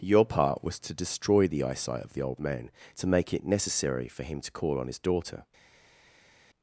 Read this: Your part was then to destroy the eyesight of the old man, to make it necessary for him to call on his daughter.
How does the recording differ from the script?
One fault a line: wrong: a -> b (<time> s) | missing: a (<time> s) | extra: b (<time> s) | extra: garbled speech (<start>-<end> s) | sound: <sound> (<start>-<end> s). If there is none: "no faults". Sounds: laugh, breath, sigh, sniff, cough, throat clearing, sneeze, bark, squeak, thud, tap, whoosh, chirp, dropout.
missing: then (0.8 s)